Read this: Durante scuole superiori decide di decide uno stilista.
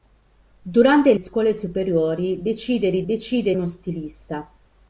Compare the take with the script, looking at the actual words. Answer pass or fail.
pass